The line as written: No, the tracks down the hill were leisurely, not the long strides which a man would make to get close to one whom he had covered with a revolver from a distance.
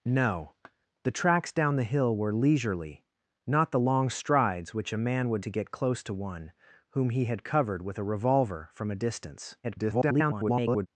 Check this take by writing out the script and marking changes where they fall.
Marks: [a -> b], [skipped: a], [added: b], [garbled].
No, the tracks down the hill were leisurely, not the long strides which a man would [skipped: make] to get close to one whom he had covered with a revolver from a distance. [garbled]